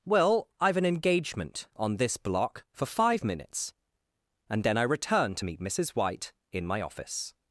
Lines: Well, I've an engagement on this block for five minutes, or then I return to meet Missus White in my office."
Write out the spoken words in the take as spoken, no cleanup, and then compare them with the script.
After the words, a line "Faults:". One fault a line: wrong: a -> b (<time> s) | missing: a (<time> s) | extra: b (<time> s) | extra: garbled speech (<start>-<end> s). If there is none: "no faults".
Well, I've an engagement on this block for five minutes, and then I return to meet Missus White in my office."
Faults:
wrong: or -> and (4.5 s)